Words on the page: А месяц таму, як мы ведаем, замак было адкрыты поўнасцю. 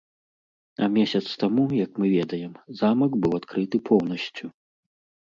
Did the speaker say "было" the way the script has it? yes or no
no